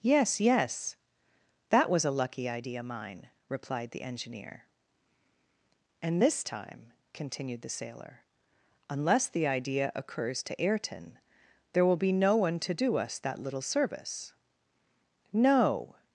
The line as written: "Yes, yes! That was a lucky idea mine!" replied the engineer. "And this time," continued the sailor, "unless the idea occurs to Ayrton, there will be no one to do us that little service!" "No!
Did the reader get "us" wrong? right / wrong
right